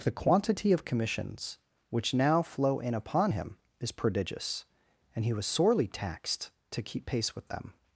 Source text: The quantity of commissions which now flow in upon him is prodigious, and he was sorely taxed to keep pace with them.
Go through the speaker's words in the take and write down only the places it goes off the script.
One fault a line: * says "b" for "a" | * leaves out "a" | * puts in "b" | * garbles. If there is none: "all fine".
all fine